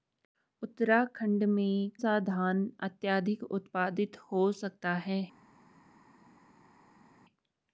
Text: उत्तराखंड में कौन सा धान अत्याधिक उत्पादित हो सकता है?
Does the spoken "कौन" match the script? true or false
false